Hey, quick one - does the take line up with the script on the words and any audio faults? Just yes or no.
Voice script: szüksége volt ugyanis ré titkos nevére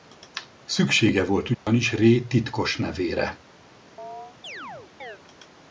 no